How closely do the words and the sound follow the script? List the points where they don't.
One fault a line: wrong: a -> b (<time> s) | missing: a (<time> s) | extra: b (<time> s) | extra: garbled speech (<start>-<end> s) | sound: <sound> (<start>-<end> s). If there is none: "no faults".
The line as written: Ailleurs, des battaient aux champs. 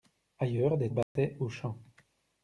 sound: dropout (1.0-1.2 s)